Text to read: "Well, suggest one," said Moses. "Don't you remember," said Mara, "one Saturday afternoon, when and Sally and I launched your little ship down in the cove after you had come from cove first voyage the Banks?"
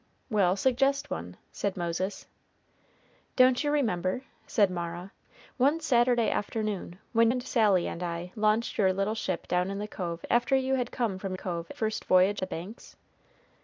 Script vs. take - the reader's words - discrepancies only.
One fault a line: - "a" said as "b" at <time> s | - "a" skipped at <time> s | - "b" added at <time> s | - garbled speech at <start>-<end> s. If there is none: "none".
none